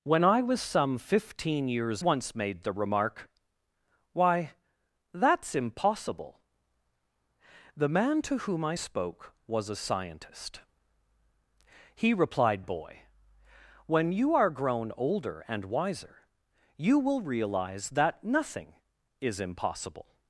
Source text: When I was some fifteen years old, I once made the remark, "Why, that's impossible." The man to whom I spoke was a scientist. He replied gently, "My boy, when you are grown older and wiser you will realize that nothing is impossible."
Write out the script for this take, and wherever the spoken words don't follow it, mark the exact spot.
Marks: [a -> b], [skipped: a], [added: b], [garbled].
When I was some fifteen years [skipped: old, I] once made the remark, "Why, that's impossible." The man to whom I spoke was a scientist. He replied [skipped: gently, "My] boy, when you are grown older and wiser you will realize that nothing is impossible."